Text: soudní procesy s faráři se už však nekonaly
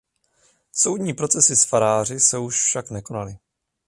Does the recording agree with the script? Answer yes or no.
yes